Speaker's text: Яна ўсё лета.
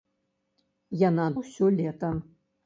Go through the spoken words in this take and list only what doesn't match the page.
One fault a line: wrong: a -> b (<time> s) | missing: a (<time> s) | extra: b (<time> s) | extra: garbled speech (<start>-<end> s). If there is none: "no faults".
no faults